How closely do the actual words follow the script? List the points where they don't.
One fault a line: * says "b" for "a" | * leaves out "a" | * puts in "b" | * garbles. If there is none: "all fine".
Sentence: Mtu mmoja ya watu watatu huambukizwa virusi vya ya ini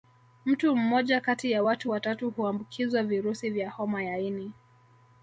* puts in "kati"
* puts in "homa"